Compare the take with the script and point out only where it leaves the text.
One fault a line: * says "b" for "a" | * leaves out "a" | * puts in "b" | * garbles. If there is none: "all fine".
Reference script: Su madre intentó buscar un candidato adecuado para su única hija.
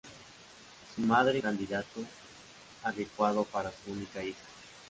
* leaves out "intentó buscar un"